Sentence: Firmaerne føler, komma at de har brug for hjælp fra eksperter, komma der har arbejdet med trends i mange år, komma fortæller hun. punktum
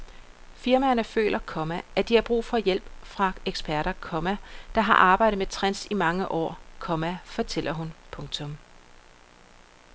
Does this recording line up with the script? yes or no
yes